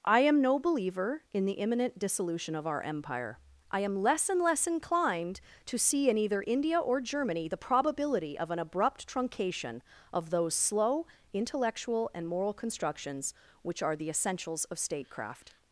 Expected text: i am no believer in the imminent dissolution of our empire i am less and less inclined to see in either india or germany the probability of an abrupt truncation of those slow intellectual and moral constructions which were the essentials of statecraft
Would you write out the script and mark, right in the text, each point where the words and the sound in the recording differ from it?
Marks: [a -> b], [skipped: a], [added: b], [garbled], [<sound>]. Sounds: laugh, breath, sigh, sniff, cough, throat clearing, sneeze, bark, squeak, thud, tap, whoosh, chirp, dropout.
i am no believer in the imminent dissolution of our empire i am less and less inclined to see in either india or germany the probability of an abrupt truncation of those slow intellectual and moral constructions which [were -> are] the essentials of statecraft